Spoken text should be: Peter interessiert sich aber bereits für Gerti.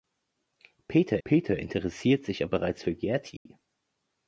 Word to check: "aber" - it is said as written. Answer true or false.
false